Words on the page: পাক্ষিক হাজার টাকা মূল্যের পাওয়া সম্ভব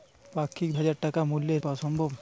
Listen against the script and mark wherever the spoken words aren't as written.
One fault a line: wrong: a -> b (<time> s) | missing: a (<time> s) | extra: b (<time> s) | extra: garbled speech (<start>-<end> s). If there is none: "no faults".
no faults